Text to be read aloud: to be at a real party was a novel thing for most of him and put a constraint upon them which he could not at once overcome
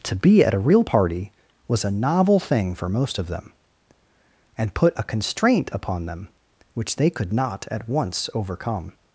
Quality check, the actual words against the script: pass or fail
fail